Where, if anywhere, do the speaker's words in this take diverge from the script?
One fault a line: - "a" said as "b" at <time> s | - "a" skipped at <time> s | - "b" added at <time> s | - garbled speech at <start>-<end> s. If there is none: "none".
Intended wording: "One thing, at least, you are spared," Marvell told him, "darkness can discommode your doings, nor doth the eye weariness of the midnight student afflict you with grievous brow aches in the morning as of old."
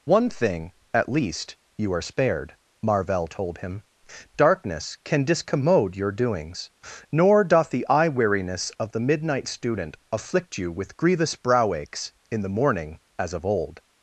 none